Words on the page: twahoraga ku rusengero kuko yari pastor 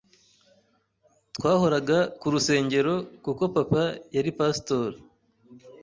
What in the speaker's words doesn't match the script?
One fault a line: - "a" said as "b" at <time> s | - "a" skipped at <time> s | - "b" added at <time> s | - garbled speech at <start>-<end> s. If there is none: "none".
- "papa" added at 3.5 s